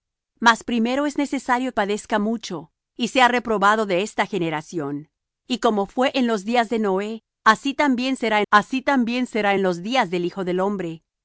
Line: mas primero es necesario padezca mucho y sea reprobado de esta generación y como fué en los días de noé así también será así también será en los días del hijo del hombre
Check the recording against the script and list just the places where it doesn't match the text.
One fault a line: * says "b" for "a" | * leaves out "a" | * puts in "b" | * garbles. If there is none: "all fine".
all fine